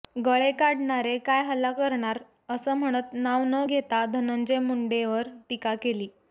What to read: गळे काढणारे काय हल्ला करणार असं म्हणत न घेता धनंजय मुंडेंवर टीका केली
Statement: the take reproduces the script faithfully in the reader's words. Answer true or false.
false